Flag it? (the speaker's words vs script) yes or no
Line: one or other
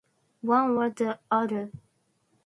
yes